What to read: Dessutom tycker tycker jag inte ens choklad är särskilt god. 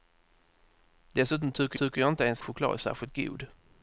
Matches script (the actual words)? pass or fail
pass